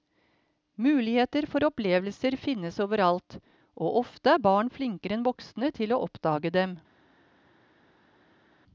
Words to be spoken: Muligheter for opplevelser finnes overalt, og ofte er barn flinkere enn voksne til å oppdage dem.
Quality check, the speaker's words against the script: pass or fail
pass